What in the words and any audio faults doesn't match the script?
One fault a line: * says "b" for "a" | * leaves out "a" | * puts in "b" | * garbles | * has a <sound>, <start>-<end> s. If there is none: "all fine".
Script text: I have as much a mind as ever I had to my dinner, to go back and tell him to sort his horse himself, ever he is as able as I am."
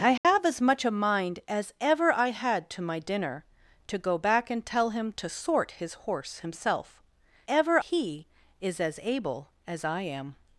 * has a dropout, 0.2-0.2 s